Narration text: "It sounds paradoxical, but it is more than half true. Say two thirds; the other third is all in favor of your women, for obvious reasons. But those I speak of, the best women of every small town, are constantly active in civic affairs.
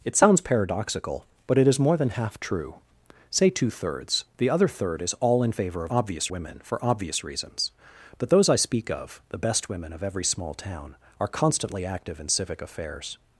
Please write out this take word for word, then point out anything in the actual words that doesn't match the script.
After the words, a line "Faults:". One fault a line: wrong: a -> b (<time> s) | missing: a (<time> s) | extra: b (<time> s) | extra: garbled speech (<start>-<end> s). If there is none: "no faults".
"It sounds paradoxical, but it is more than half true. Say two thirds; the other third is all in favor of obvious women, for obvious reasons. But those I speak of, the best women of every small town, are constantly active in civic affairs.
Faults:
wrong: your -> obvious (5.9 s)